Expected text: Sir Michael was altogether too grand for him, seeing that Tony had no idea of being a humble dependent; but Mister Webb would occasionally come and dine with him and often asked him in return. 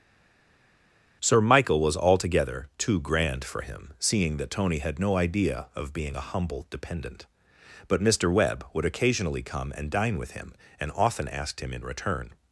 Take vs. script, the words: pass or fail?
pass